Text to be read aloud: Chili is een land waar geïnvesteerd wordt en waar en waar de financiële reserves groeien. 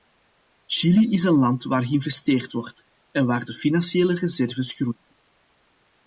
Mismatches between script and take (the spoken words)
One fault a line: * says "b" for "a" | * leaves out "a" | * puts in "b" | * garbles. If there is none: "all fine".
* leaves out "en waar"